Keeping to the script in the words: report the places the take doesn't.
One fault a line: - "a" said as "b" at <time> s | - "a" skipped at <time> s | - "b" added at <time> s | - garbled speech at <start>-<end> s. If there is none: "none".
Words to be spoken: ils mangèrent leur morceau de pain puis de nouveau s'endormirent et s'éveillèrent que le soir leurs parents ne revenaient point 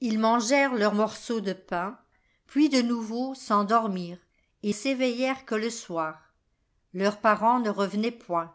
none